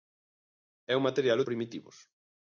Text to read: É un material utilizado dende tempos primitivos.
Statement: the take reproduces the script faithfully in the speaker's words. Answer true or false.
false